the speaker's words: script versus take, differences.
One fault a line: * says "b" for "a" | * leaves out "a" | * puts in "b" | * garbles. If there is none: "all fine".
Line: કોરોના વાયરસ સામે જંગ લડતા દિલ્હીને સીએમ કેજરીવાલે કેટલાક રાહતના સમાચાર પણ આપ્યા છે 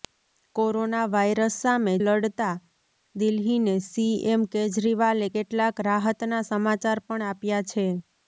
* leaves out "જંગ"